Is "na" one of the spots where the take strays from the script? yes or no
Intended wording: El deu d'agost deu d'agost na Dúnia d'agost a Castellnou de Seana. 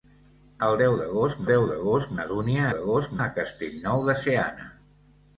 no